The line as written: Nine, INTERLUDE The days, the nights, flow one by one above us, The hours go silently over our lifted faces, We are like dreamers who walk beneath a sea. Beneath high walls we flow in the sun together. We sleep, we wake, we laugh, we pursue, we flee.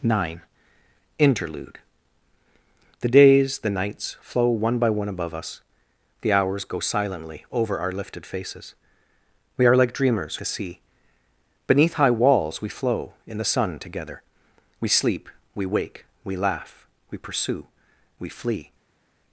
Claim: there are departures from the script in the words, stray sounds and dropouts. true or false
true